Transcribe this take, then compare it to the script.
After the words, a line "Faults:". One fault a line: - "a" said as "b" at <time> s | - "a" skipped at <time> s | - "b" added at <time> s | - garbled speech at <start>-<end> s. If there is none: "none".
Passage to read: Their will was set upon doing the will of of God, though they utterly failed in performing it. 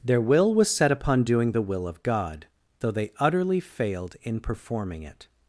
Their will was set upon doing the will of God, though they utterly failed in performing it.
Faults:
- "of" skipped at 2.0 s